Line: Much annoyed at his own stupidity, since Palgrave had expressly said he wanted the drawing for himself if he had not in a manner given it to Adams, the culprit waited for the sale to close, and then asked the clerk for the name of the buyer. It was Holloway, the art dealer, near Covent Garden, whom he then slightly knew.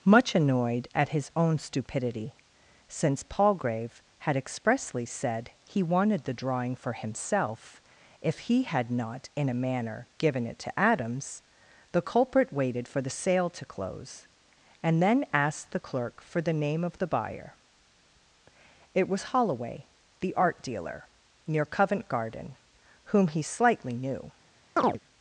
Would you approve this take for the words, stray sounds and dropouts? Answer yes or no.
no